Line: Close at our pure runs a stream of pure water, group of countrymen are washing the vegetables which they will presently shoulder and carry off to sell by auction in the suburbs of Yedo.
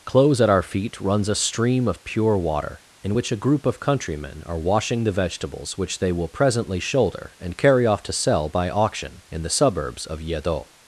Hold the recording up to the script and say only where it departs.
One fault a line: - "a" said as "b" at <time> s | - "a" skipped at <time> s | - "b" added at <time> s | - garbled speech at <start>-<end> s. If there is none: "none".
- "pure" said as "feet" at 0.6 s
- "in which a" added at 3.0 s